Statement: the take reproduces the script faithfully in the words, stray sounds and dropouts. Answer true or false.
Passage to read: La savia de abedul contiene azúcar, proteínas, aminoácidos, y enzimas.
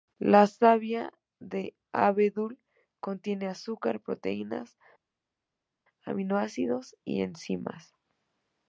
true